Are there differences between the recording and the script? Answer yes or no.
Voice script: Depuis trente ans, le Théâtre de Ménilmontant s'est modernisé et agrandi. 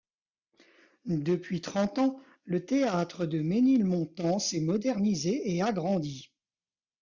no